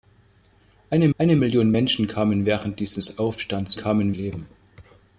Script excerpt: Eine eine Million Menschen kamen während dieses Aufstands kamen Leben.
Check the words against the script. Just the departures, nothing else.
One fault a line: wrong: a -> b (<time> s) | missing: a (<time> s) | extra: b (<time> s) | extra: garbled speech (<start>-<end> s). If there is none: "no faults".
no faults